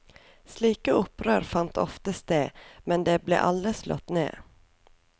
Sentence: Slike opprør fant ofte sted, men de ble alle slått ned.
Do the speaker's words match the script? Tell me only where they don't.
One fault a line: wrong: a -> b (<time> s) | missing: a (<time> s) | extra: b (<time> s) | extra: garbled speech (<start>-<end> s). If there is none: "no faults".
no faults